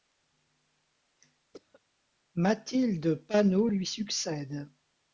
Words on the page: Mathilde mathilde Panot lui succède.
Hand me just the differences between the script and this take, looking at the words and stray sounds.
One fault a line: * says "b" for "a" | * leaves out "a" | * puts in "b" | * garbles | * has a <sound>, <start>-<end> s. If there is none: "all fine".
* has a cough, 1.5-1.8 s
* leaves out "mathilde"